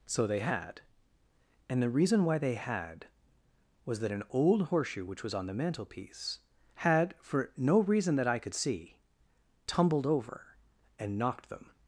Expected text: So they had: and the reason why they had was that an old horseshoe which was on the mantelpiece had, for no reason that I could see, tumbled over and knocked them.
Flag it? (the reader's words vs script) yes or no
no